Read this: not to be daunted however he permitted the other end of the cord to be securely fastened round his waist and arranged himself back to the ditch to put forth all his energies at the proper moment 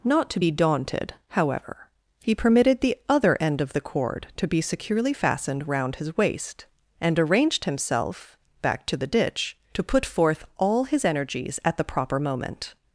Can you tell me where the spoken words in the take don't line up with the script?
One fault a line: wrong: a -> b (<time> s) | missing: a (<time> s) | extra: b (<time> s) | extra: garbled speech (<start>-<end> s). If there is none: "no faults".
no faults